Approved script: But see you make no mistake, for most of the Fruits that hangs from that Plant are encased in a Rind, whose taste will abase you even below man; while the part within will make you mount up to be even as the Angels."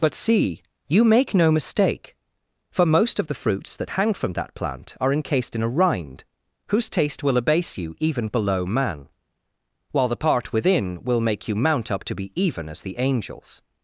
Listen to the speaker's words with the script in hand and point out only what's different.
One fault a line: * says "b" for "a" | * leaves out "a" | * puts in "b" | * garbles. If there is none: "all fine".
* says "hang" for "hangs"